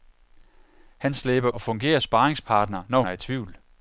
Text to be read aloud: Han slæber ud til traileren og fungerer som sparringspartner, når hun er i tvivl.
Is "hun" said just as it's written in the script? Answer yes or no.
no